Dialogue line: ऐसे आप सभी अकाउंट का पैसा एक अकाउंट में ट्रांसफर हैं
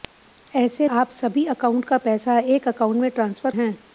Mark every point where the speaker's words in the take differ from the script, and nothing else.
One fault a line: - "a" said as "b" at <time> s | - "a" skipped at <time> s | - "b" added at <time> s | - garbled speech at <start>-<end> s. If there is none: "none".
none